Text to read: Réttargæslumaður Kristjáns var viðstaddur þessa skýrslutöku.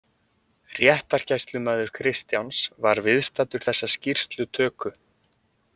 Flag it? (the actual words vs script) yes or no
no